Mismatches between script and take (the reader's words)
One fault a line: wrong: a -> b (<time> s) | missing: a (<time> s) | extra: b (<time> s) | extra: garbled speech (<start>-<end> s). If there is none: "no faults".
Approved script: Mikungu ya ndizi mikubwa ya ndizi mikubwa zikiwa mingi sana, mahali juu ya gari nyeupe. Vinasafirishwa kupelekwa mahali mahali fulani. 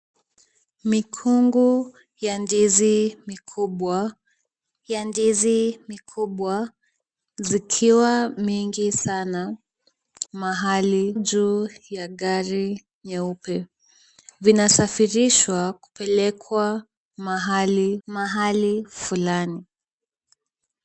no faults